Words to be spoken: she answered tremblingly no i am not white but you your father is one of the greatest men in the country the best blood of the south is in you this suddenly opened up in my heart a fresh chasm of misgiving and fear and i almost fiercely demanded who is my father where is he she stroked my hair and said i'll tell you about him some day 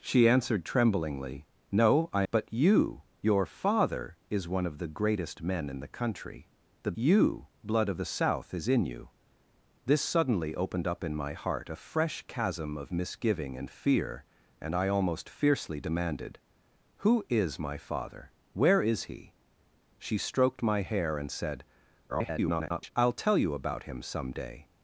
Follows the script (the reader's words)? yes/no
no